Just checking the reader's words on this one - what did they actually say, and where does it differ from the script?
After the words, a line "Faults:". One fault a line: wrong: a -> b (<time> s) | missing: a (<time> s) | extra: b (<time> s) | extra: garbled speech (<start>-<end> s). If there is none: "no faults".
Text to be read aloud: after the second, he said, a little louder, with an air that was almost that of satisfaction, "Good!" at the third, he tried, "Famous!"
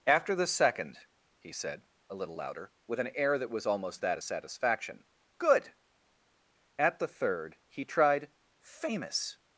after the second, he said, a little louder, with an air that was almost that of satisfaction, "Good!" at the third, he tried, "Famous!"
Faults:
no faults